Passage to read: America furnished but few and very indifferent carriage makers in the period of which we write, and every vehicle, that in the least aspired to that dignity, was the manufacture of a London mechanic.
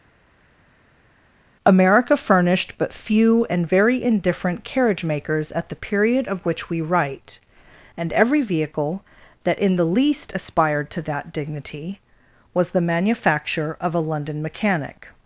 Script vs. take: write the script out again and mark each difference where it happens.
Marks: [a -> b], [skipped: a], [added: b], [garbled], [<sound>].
America furnished but few and very indifferent carriage makers [in -> at] the period of which we write, and every vehicle, that in the least aspired to that dignity, was the manufacture of a London mechanic.